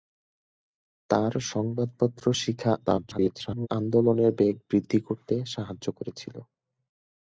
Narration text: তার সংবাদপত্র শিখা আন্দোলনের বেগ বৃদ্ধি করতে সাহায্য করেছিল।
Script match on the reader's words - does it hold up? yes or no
no